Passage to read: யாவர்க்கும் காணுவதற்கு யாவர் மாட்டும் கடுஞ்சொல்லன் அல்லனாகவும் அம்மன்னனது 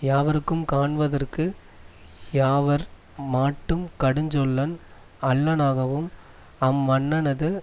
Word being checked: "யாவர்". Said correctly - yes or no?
yes